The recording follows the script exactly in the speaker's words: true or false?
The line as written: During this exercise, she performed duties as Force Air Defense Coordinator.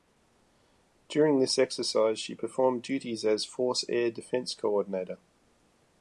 true